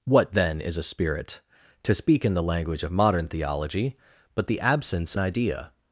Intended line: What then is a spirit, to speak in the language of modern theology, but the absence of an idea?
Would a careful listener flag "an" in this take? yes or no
yes